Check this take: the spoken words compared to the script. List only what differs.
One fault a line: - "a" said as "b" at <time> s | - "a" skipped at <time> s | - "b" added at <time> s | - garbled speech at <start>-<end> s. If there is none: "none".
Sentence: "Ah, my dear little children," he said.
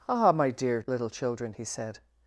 none